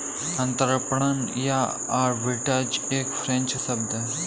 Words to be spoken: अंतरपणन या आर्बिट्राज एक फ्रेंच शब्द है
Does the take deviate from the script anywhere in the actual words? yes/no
no